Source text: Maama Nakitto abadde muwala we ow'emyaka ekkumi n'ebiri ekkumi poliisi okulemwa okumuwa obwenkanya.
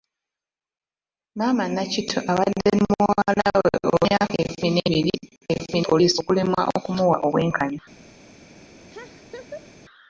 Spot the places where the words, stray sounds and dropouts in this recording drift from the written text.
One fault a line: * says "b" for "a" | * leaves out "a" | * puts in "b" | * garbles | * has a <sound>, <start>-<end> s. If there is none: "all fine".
* has a laugh, 8.9-9.7 s